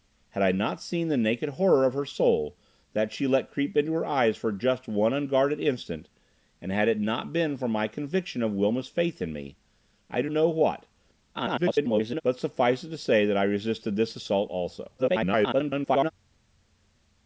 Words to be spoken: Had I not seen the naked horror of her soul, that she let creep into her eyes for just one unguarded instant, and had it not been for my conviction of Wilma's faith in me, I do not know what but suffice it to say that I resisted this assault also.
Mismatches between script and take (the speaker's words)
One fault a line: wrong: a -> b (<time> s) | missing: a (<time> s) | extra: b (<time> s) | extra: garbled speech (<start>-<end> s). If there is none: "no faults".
missing: not (10.3 s)
extra: garbled speech (11.3-12.2 s)
extra: garbled speech (15.0-16.1 s)